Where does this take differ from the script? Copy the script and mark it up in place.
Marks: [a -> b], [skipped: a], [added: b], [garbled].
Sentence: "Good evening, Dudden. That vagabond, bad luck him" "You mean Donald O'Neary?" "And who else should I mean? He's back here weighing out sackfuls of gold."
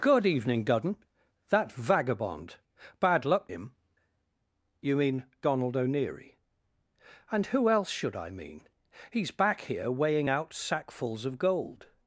"Good evening, Dudden. That vagabond, bad luck him" "You mean Donald O'Neary?" "And who else should I mean? He's back here weighing out sackfuls of gold."